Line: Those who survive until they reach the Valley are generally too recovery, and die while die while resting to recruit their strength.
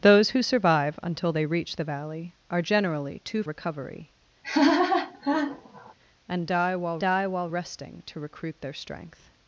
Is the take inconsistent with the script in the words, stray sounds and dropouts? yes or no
yes